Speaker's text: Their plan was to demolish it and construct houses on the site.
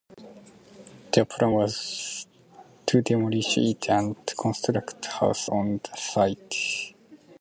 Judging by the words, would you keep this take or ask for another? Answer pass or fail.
pass